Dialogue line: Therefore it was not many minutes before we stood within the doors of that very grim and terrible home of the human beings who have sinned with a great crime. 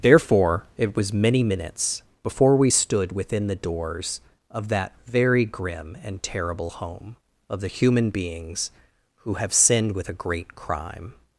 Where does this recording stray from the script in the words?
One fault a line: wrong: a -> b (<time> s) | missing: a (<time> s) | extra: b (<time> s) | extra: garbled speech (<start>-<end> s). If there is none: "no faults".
missing: not (1.1 s)